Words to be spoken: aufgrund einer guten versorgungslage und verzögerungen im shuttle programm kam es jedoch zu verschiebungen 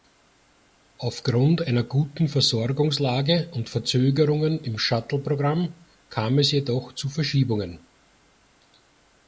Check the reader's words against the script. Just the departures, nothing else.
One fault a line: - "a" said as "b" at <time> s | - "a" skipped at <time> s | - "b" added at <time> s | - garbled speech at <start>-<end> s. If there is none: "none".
none